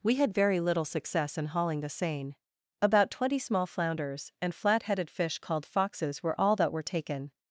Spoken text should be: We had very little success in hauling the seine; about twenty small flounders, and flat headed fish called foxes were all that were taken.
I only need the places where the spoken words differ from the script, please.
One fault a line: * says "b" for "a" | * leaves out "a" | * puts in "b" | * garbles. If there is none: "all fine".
all fine